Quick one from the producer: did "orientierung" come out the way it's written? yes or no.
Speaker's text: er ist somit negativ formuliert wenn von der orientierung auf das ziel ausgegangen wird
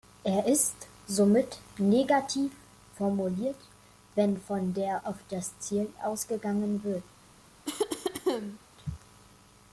no